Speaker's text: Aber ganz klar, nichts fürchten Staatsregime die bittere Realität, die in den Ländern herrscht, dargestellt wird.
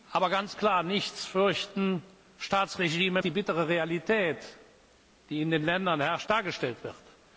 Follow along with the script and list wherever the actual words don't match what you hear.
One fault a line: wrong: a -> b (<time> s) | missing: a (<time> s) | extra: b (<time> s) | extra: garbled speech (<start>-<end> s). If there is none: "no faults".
no faults